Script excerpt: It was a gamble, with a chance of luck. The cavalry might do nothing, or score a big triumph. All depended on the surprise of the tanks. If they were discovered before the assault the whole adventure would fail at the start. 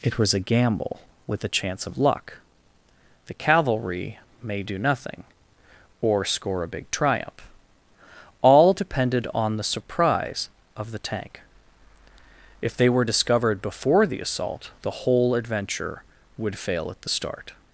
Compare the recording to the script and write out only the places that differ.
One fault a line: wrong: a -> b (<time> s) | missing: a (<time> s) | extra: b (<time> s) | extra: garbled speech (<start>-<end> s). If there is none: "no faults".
wrong: might -> may (4.4 s)
wrong: tanks -> tank (11.0 s)